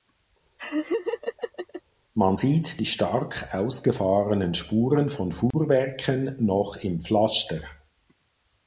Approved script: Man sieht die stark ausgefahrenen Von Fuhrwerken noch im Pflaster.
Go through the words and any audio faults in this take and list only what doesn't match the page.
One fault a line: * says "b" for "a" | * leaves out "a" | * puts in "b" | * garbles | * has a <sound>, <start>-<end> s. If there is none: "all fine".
* has a laugh, 0.6-1.8 s
* puts in "Spuren"
* has a dropout, 5.5-5.5 s